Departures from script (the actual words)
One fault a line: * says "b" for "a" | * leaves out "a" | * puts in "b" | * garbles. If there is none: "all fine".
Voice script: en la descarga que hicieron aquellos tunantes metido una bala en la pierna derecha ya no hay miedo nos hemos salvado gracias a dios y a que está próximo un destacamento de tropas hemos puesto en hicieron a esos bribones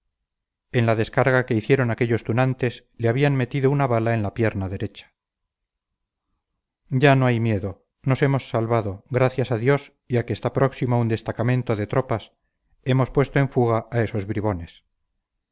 * puts in "le habían"
* says "fuga" for "hicieron"